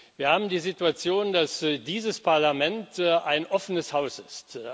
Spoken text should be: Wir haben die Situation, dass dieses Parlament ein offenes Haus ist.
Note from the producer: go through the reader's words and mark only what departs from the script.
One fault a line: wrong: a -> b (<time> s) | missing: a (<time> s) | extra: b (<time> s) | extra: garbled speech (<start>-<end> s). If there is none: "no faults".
no faults